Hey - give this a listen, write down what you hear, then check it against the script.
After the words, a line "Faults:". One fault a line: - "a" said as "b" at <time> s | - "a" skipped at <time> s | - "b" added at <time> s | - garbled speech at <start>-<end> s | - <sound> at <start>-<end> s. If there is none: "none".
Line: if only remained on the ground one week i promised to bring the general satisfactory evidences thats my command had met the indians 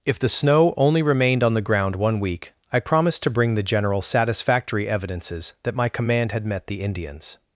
if the snow only remained on the ground one week i promised to bring the general satisfactory evidences that my command had met the indians
Faults:
- "the snow" added at 0.2 s
- "thats" said as "that" at 5.6 s